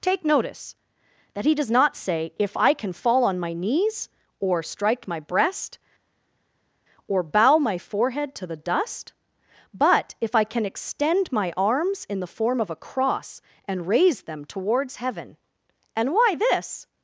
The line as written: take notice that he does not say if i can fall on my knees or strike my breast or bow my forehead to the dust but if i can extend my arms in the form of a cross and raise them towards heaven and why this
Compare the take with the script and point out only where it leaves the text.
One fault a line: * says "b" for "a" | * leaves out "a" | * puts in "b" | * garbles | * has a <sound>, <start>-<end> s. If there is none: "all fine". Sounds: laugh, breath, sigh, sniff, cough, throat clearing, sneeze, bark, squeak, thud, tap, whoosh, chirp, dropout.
all fine